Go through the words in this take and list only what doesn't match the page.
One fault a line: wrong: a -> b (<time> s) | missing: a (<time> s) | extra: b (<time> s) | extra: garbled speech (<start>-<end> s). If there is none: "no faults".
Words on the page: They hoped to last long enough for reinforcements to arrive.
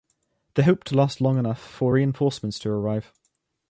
no faults